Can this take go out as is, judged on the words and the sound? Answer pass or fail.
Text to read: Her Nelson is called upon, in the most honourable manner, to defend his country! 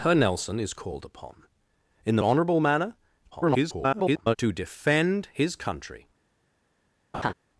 fail